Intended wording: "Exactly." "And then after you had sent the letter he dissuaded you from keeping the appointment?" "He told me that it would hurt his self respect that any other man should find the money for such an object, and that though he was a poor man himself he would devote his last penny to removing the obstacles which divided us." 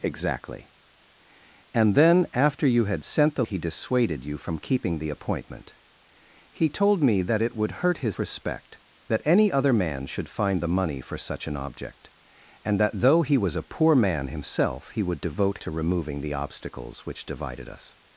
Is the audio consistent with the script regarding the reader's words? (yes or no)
no